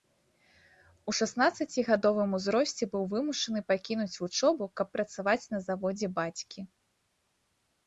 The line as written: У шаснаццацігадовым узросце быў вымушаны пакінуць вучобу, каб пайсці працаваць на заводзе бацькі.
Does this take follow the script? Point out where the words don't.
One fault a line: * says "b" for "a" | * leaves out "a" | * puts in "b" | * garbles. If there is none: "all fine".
* leaves out "пайсці"